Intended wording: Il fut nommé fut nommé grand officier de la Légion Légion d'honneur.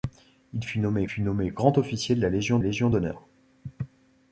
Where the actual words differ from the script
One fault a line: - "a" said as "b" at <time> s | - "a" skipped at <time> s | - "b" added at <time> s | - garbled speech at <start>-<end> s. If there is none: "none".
none